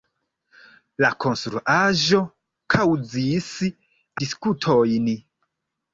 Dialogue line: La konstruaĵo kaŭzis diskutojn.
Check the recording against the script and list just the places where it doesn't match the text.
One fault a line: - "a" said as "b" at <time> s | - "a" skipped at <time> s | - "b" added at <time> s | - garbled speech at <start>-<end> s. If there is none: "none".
none